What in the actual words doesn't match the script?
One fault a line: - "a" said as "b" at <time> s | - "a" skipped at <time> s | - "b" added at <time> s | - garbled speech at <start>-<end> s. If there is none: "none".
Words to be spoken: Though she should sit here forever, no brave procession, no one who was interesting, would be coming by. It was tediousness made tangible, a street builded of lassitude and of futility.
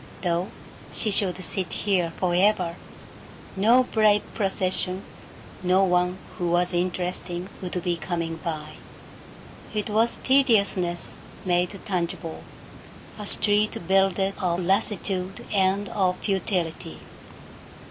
none